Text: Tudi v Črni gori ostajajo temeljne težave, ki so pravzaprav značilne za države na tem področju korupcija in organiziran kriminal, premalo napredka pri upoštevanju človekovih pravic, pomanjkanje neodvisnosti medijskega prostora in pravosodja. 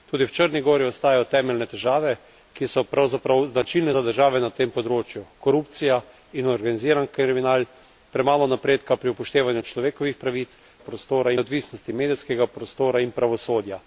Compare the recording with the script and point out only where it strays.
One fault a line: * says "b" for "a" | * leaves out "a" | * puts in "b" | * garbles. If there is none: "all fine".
* says "prostora" for "pomanjkanje"